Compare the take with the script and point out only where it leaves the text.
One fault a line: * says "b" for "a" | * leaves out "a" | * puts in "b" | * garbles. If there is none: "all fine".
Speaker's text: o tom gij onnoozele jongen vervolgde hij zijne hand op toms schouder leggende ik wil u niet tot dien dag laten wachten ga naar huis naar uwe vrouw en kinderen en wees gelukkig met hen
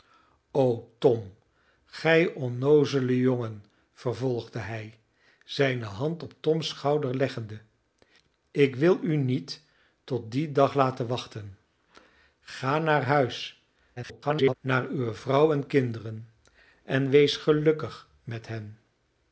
* garbles